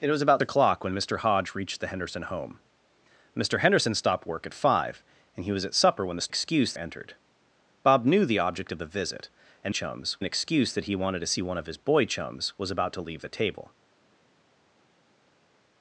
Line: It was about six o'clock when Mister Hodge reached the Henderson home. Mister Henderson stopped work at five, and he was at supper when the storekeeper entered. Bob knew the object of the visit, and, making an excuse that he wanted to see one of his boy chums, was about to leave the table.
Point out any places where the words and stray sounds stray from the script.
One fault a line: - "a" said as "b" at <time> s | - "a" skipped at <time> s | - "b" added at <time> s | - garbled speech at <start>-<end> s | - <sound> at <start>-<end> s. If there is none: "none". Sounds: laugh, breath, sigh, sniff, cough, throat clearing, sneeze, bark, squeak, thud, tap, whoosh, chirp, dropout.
- "six" skipped at 0.4 s
- "storekeeper" said as "excuse" at 6.3 s
- "making" said as "chums" at 9.7 s